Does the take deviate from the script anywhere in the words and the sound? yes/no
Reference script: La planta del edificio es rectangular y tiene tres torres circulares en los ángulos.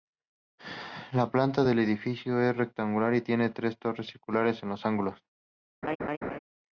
yes